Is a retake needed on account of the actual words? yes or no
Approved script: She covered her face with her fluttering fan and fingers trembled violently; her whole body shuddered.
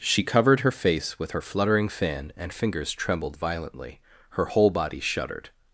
no